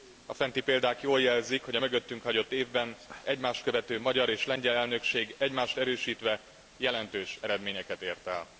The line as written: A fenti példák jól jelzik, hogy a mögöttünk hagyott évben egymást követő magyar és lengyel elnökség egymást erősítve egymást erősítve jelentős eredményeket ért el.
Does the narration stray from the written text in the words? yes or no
yes